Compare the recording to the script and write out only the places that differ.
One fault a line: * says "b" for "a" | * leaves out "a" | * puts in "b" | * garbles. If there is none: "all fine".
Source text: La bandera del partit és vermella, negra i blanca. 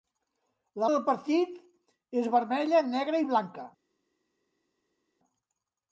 * leaves out "bandera"